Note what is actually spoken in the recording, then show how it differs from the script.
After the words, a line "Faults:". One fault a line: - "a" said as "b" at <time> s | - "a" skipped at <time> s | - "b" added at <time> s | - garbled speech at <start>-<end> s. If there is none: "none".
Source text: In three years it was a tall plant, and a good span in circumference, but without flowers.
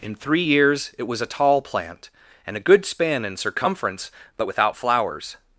In three years it was a tall plant, and a good span in circumference, but without flowers.
Faults:
none